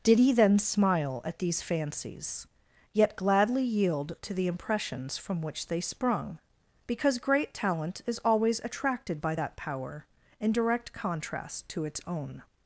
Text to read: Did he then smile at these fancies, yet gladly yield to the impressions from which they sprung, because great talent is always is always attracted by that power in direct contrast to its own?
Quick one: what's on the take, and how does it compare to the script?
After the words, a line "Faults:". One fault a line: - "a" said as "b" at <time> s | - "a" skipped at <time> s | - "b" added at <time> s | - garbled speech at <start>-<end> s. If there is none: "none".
Did he then smile at these fancies, yet gladly yield to the impressions from which they sprung, because great talent is always attracted by that power in direct contrast to its own?
Faults:
- "is always" skipped at 8.6 s